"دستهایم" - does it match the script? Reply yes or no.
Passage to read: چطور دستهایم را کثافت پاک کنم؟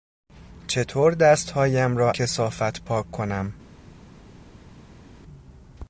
yes